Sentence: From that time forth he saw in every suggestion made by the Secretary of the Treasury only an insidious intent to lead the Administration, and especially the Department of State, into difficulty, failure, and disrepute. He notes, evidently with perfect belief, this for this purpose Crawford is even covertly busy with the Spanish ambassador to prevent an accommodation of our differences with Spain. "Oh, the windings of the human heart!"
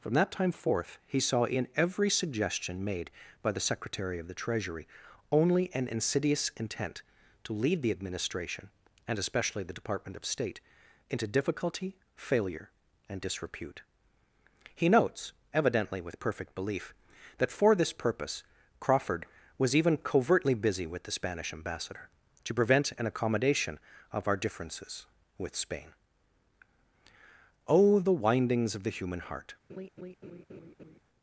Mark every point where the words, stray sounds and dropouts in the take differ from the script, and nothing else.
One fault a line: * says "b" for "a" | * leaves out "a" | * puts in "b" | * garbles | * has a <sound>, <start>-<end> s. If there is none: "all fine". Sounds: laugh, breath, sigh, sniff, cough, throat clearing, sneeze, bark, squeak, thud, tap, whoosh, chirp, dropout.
* says "that" for "this"
* says "was" for "is"
* has a laugh, 29.7-31.0 s